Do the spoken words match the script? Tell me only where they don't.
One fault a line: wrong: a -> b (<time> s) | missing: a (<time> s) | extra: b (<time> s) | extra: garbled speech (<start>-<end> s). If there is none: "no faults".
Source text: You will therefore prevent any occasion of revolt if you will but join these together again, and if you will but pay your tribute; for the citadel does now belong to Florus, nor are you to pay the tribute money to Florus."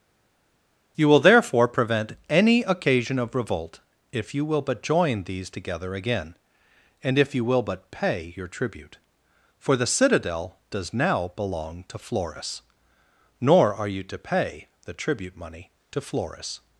no faults